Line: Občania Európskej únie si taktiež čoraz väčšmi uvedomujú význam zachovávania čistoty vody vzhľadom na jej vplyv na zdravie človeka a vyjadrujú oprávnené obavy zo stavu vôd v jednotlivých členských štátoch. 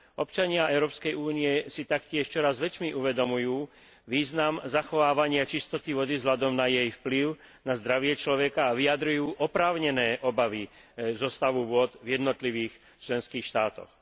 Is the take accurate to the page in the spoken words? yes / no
yes